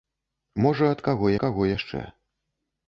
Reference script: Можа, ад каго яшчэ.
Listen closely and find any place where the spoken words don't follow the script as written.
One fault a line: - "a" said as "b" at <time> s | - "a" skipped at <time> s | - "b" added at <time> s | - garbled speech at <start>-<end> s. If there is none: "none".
- "каго" added at 1.4 s